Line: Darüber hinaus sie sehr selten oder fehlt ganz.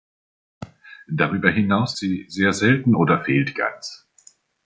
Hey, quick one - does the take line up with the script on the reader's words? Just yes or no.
yes